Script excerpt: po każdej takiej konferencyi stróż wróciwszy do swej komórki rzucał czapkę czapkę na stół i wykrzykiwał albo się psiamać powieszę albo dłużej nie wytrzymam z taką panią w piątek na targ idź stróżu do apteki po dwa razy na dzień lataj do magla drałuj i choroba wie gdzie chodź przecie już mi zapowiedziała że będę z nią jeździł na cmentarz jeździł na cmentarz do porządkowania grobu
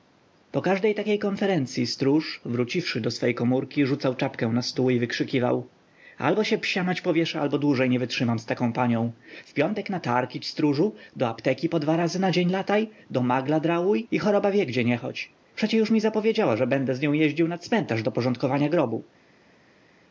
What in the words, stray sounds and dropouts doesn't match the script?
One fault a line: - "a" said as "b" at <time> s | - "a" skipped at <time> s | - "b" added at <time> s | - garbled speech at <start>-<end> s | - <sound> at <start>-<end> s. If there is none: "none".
- "czapkę" skipped at 4.5 s
- "nie" added at 14.8 s
- "jeździł na cmentarz" skipped at 18.0 s